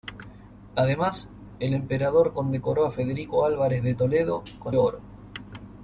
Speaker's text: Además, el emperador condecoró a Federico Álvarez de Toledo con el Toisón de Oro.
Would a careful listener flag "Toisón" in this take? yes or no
yes